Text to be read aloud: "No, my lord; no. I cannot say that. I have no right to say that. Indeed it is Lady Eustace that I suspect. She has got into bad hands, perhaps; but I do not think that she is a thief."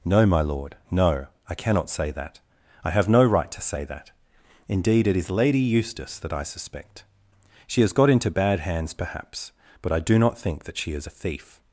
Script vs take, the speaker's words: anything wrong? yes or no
no